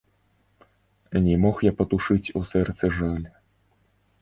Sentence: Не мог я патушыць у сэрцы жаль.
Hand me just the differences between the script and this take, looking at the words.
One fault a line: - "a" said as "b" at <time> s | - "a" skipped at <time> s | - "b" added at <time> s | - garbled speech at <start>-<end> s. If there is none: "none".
none